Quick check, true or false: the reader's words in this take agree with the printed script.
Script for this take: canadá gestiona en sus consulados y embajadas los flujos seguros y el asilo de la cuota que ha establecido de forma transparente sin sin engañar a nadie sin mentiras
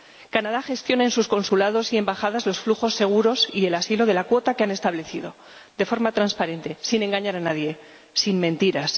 false